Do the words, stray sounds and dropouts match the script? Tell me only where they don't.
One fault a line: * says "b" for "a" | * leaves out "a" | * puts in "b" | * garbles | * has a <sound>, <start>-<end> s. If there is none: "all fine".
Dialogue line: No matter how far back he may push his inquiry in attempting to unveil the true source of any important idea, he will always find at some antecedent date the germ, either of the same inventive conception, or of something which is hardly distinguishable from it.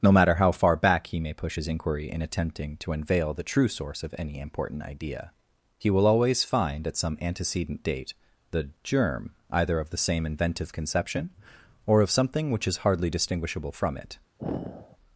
* has a sigh, 14.4-15.0 s